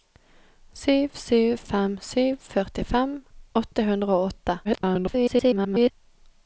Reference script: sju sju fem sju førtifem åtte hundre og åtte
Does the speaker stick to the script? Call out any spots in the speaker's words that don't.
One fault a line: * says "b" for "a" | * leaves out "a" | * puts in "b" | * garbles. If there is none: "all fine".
* garbles